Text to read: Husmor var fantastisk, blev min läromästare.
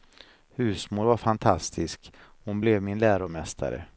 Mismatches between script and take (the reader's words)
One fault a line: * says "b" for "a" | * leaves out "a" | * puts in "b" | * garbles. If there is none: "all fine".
* puts in "hon"